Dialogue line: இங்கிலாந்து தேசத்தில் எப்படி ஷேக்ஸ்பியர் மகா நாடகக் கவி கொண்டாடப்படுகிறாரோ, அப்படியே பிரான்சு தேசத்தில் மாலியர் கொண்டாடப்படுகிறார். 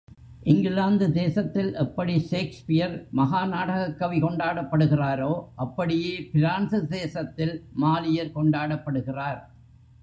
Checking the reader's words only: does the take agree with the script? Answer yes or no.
yes